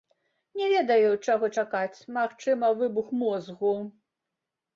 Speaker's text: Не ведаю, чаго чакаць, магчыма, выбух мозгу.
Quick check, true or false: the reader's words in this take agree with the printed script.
true